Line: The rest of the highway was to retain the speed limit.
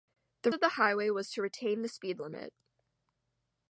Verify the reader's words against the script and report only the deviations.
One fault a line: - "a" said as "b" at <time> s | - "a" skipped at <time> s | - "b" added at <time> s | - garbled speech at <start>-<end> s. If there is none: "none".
- "rest" skipped at 0.5 s